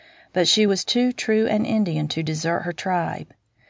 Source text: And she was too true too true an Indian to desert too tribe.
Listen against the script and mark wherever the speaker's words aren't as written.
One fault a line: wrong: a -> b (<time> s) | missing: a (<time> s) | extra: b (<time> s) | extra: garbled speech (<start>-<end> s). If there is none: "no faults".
wrong: And -> But (0.3 s)
missing: too true (1.5 s)
wrong: too -> her (2.6 s)